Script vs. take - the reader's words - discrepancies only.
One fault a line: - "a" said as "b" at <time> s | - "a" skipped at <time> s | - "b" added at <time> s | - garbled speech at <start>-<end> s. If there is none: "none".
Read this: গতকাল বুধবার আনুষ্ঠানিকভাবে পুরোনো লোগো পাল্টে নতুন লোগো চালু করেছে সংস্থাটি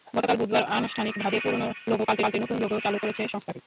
- "পাল্টে" added at 2.2 s